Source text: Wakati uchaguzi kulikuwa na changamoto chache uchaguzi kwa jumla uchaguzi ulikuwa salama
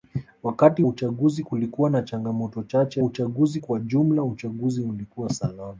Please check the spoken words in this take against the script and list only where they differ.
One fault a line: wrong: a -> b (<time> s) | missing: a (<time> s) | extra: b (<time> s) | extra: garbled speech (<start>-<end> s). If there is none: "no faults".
no faults